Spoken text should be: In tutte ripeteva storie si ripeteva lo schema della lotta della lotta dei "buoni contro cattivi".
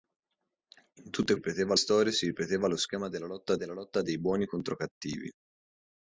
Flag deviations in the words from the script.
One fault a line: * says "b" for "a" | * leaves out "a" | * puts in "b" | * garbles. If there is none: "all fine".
all fine